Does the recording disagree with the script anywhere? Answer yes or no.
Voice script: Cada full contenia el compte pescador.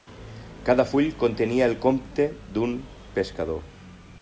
yes